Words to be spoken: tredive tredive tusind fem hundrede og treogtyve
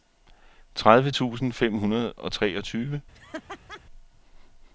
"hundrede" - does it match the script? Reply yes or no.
yes